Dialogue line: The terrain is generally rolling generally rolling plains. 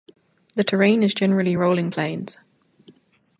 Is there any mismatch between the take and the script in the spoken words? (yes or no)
yes